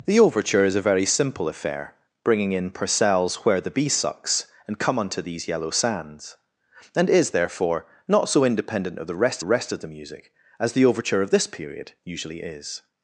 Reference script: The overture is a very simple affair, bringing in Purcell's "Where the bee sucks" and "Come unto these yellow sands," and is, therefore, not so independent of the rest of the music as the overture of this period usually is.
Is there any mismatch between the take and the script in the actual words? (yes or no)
yes